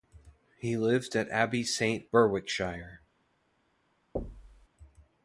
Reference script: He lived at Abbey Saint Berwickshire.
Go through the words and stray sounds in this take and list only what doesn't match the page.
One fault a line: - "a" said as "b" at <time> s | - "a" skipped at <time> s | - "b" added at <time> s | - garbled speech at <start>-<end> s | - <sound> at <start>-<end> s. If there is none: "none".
- thud at 4.2-4.7 s